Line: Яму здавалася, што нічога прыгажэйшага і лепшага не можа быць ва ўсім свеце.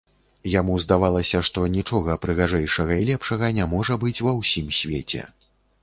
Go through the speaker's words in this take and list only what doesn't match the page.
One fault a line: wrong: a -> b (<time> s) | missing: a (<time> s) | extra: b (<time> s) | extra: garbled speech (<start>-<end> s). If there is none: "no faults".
no faults